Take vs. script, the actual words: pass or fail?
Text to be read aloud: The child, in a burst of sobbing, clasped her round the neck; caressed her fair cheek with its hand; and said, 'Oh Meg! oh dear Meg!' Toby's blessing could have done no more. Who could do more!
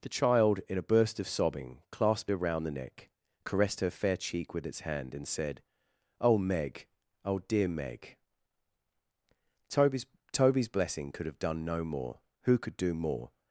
fail